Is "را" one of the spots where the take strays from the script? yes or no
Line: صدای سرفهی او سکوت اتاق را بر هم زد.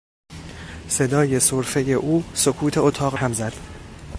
yes